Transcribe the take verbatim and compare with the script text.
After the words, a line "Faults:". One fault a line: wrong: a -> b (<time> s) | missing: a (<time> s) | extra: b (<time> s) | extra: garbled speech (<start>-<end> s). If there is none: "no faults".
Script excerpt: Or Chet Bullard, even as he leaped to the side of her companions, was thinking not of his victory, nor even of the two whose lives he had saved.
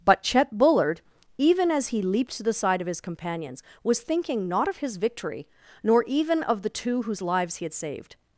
But Chet Bullard, even as he leaped to the side of his companions, was thinking not of his victory, nor even of the two whose lives he had saved.
Faults:
wrong: Or -> But (0.1 s)
wrong: her -> his (2.9 s)